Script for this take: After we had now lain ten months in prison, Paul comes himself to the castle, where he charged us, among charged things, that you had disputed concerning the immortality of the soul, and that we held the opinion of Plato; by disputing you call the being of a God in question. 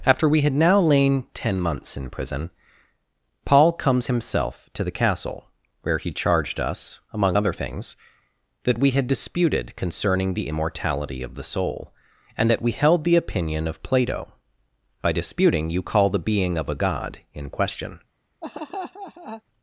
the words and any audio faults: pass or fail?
fail